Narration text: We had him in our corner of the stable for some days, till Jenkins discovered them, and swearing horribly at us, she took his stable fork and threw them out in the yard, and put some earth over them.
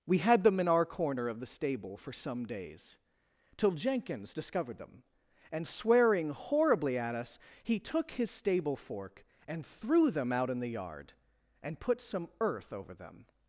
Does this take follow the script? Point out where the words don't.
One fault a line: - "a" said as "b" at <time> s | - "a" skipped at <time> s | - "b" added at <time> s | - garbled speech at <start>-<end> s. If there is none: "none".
- "him" said as "them" at 0.4 s
- "she" said as "he" at 7.6 s